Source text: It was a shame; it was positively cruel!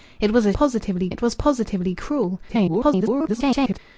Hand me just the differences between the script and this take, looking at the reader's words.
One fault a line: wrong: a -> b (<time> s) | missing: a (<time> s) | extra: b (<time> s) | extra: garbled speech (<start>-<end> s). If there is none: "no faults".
wrong: shame -> positively (0.5 s)
extra: garbled speech (2.5-3.8 s)